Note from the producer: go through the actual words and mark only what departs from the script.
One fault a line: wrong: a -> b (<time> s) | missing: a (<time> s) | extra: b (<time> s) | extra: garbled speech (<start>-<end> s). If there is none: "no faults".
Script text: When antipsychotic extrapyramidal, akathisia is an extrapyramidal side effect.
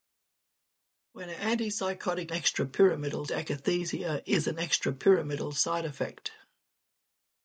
no faults